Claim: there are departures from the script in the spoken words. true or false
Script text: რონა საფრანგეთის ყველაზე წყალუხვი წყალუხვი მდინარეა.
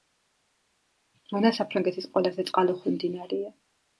true